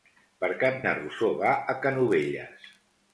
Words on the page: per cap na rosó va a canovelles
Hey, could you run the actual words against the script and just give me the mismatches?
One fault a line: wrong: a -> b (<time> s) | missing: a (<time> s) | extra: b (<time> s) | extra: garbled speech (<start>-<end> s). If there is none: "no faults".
no faults